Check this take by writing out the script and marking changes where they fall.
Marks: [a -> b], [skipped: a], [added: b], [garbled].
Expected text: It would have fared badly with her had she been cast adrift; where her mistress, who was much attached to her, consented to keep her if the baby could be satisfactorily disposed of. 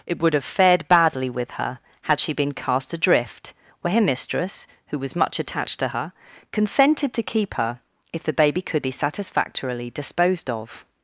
It would have fared badly with her had she been cast adrift; where her mistress, who was much attached to her, consented to keep her if the baby could be satisfactorily disposed of.